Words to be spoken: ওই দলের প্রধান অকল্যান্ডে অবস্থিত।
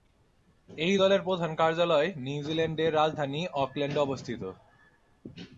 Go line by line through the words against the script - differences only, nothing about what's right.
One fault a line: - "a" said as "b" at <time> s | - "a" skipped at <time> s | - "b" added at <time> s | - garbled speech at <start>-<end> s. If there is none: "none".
- "ওই" said as "এই" at 0.7 s
- "কার্যালয় নিউজিল্যান্ডের রাজধানী" added at 1.5 s